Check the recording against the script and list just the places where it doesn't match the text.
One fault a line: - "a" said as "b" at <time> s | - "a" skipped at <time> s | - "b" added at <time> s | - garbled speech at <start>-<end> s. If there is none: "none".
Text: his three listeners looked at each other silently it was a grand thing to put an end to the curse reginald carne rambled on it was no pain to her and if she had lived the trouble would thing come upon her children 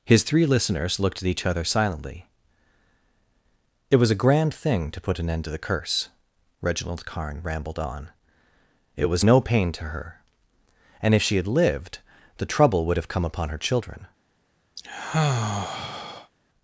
- "thing" said as "have" at 13.0 s